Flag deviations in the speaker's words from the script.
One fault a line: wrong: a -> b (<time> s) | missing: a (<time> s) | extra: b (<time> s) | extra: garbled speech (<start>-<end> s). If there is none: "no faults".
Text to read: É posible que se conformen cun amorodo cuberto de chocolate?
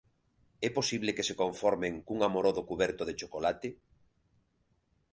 no faults